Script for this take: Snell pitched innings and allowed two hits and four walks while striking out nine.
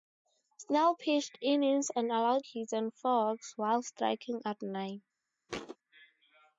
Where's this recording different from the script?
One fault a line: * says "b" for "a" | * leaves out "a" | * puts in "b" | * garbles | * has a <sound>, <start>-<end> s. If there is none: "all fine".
* leaves out "two"
* has a thud, 5.5-5.8 s